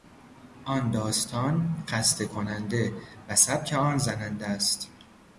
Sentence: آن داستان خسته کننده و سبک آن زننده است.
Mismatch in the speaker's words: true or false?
false